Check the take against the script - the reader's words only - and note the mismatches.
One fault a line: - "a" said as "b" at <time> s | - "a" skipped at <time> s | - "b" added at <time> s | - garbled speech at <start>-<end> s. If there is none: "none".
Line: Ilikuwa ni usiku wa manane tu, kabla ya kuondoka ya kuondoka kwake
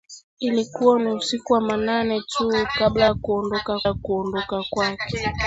none